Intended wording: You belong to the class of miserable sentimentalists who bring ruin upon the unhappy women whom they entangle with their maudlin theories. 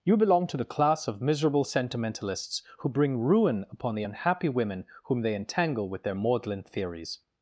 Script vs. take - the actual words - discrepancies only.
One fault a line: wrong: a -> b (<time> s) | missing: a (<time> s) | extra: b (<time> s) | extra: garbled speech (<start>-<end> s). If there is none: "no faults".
no faults